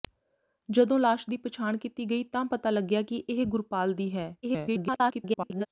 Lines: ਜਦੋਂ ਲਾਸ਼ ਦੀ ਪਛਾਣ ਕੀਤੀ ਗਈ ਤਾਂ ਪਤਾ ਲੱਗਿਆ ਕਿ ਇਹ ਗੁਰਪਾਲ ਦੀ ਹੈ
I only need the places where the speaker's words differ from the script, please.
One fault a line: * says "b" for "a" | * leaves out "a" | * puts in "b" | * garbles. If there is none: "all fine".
* garbles